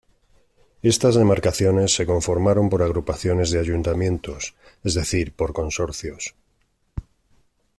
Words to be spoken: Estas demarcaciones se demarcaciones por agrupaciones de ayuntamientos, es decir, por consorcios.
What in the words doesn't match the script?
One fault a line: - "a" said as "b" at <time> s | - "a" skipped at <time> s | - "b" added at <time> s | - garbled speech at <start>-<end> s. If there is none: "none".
- "demarcaciones" said as "conformaron" at 2.1 s